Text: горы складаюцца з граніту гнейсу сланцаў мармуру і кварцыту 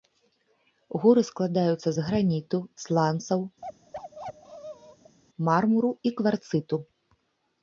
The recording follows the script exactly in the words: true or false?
false